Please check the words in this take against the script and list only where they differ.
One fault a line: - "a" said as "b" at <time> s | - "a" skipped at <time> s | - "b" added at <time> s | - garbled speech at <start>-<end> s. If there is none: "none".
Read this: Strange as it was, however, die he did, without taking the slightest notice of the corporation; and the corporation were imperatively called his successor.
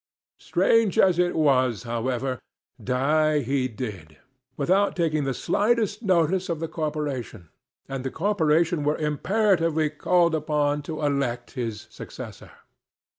- "upon to elect" added at 10.3 s